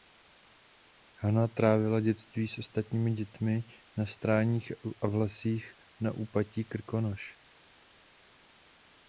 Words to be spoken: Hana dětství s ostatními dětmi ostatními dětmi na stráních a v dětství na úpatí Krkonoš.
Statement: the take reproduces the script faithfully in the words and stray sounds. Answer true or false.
false